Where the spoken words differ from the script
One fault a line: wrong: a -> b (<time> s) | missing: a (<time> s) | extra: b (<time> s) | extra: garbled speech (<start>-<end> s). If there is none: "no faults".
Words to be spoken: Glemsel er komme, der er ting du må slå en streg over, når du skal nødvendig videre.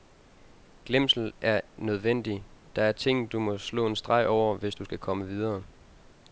wrong: komme -> nødvendig (1.8 s)
wrong: når -> hvis (4.6 s)
wrong: nødvendig -> komme (5.0 s)